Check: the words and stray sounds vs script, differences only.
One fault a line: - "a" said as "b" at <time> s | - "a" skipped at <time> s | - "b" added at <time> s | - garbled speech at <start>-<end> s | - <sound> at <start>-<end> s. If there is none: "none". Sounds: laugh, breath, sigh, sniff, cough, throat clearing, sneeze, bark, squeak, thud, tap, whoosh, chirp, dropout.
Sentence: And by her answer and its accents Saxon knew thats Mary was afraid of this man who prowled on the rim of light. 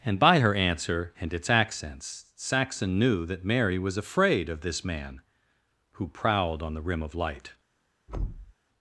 - "thats" said as "that" at 3.2 s
- thud at 8.1-8.5 s